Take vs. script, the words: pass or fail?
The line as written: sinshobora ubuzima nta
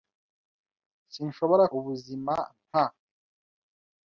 pass